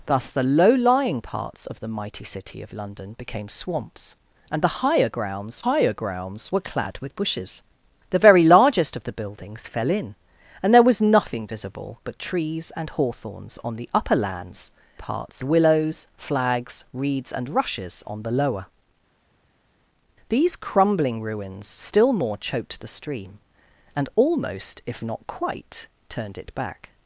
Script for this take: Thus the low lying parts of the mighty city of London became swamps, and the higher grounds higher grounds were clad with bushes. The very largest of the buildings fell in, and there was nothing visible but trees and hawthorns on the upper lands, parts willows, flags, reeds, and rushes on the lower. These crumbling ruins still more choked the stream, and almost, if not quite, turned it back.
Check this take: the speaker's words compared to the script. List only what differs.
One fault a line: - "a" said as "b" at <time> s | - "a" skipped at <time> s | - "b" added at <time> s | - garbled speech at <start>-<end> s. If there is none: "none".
none